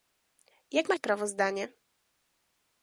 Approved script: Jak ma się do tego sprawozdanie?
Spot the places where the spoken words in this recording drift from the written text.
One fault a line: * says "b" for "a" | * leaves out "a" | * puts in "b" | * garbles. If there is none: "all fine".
* leaves out "się do tego"